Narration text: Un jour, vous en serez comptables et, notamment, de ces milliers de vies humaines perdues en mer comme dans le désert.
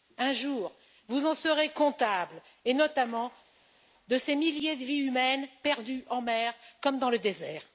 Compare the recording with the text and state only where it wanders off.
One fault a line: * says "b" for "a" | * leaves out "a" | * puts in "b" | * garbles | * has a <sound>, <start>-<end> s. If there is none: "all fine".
all fine